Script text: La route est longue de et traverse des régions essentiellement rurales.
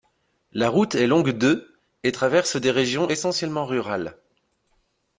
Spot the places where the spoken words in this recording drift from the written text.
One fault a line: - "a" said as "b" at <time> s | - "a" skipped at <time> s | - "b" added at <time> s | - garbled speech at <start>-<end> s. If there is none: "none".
none